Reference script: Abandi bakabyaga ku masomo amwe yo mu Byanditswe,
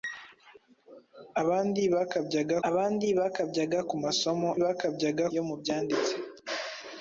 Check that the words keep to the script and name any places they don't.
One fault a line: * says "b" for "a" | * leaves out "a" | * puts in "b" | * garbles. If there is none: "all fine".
* puts in "abandi bakabyaga"
* says "bakabyaga" for "amwe"